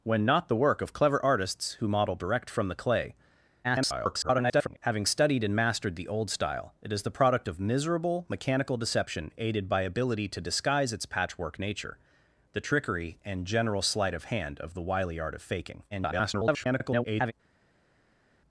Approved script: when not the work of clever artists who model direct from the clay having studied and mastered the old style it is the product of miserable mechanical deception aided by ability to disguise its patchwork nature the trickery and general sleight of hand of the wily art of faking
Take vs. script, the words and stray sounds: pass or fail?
fail